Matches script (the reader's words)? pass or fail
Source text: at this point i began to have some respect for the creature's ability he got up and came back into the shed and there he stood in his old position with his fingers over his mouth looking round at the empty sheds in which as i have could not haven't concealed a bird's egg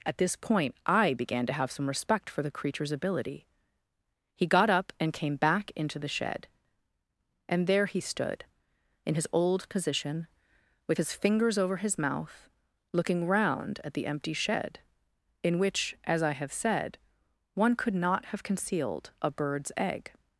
fail